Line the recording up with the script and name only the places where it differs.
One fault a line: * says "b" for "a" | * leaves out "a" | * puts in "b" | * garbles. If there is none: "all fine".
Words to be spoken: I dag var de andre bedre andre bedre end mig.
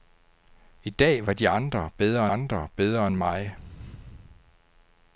all fine